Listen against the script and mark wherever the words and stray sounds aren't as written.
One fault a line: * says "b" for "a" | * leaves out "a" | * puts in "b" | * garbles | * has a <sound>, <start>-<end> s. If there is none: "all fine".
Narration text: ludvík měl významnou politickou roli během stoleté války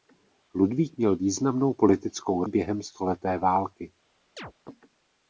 * leaves out "roli"
* has a chirp, 4.4-4.5 s